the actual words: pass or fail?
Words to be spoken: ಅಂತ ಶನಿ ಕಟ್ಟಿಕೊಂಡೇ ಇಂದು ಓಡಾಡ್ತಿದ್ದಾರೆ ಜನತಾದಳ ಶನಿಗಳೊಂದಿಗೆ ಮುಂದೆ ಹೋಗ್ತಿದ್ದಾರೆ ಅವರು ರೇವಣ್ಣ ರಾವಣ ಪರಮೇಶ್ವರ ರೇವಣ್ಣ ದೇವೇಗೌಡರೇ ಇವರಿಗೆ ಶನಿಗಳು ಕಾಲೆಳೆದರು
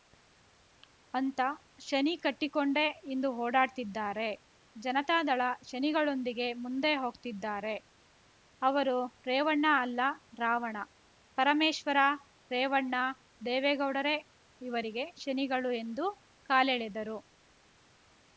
fail